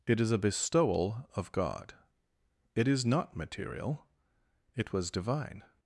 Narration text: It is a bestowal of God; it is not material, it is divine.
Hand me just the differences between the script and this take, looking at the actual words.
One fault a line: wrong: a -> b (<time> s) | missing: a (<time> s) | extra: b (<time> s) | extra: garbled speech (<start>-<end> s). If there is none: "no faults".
wrong: is -> was (4.9 s)